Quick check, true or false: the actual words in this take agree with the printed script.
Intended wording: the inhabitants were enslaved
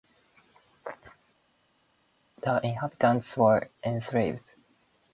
true